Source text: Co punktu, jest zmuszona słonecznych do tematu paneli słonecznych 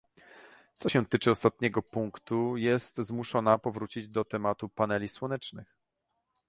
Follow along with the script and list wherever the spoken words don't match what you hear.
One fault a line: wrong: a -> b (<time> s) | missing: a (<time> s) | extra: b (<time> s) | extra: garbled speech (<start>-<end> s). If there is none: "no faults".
extra: się tyczy ostatniego (0.9 s)
wrong: słonecznych -> powrócić (3.6 s)